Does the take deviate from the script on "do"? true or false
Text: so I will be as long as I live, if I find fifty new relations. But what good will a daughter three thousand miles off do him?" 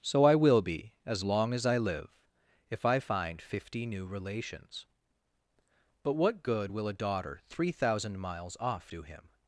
false